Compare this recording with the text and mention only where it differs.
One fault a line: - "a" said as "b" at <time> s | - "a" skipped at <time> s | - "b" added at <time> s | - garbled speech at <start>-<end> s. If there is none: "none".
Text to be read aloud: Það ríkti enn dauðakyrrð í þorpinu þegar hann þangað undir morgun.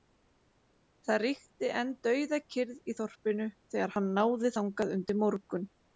- "náði" added at 4.2 s